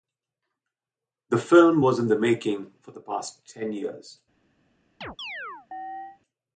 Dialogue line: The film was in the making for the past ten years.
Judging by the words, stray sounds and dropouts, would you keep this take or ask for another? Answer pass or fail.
fail